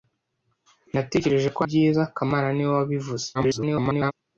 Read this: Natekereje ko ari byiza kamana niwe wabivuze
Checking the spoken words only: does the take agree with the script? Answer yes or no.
no